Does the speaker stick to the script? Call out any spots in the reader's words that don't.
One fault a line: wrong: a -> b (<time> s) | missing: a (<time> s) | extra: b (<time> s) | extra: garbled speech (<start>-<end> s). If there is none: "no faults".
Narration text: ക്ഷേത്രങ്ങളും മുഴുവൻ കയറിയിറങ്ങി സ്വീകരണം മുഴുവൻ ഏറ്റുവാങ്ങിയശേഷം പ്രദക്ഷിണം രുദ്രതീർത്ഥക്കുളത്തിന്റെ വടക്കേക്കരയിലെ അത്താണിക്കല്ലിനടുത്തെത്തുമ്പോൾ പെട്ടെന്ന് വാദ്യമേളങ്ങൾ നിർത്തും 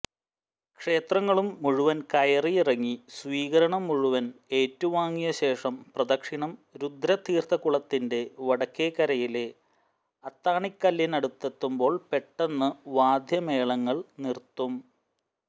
no faults